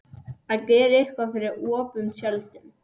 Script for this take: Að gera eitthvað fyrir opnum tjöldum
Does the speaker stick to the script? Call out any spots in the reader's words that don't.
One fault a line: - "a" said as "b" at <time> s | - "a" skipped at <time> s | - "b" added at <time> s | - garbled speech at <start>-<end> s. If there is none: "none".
none